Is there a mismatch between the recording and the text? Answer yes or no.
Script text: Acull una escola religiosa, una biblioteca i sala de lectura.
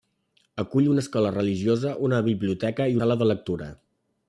no